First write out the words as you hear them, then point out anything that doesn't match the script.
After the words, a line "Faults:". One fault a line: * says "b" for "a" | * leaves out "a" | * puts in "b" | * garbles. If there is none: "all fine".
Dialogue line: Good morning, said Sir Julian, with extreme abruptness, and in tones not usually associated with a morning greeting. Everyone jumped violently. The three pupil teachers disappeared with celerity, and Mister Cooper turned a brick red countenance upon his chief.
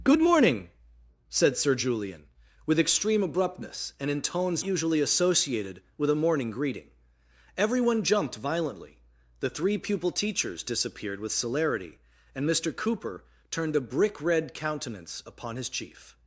Good morning, said Sir Julian, with extreme abruptness, and in tones usually associated with a morning greeting. Everyone jumped violently. The three pupil teachers disappeared with celerity, and Mister Cooper turned a brick red countenance upon his chief.
Faults:
* leaves out "not"